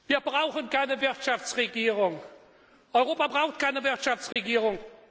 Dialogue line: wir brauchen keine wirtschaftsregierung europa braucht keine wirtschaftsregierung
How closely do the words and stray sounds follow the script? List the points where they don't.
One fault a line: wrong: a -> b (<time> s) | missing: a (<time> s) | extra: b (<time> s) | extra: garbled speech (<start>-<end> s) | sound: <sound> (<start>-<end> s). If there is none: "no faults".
sound: dropout (4.3-4.4 s)